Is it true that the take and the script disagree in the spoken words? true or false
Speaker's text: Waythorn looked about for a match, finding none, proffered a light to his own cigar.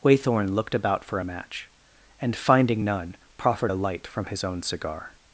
true